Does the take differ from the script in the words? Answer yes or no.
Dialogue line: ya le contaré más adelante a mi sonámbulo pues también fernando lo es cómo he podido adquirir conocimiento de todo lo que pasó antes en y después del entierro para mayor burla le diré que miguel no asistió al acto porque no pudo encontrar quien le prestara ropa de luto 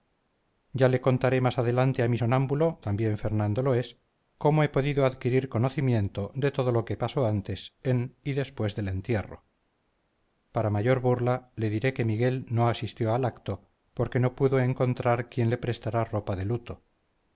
yes